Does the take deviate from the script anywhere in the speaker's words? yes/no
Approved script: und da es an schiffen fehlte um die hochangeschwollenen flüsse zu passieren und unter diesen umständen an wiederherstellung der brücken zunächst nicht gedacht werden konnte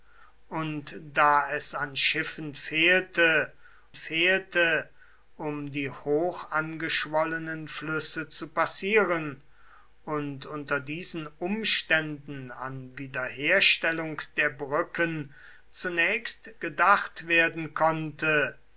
yes